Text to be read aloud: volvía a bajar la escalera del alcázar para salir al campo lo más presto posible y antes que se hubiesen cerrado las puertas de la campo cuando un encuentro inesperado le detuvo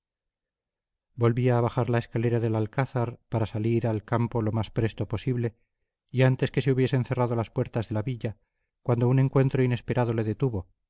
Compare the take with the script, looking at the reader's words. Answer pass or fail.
fail